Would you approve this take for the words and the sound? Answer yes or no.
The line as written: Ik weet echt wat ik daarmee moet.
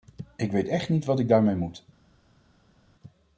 no